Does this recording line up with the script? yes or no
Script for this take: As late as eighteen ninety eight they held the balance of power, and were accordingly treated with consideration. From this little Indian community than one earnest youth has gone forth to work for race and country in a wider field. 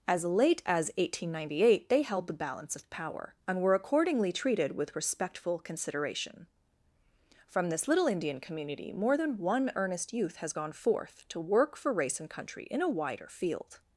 no